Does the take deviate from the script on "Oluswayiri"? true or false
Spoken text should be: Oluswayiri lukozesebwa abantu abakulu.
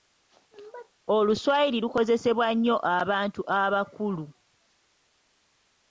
false